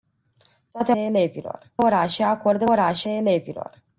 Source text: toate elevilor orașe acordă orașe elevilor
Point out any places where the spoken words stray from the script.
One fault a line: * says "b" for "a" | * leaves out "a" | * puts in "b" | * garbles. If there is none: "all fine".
all fine